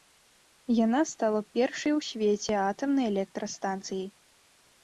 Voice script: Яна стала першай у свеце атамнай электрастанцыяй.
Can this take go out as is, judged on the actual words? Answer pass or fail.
pass